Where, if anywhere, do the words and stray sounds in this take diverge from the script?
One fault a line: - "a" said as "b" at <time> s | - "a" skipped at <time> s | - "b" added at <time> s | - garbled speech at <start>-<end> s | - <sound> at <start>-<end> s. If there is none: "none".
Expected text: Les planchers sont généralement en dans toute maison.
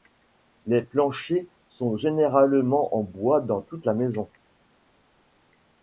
- "bois" added at 3.0 s
- "la" added at 3.8 s